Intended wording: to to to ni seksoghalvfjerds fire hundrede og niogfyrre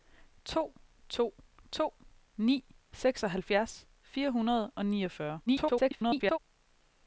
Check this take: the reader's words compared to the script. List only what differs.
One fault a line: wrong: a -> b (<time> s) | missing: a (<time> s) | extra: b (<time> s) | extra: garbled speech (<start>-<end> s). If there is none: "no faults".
extra: garbled speech (5.5-6.4 s)